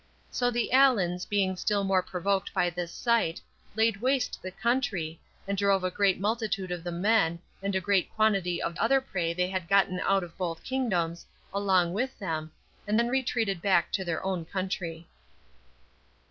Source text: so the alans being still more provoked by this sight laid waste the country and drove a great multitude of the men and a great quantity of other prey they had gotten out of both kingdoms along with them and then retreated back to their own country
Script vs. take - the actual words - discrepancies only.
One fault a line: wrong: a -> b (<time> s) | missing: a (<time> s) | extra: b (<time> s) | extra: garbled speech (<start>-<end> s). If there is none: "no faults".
no faults